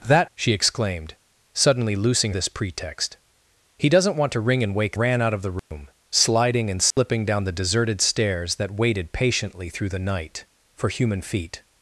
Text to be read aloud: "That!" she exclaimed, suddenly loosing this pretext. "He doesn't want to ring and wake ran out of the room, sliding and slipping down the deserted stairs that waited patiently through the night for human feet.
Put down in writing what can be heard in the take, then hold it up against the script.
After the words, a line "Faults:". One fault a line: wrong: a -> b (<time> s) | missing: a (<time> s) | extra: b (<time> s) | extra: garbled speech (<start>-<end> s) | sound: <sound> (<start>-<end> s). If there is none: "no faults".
"That!" she exclaimed, suddenly loosing this pretext. "He doesn't want to ring and wake ran out of the room, sliding and slipping down the deserted stairs that waited patiently through the night for human feet.
Faults:
sound: dropout (5.6-5.7 s)
sound: dropout (6.9-7.0 s)